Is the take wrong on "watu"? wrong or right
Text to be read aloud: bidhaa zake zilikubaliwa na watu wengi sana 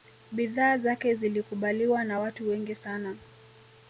right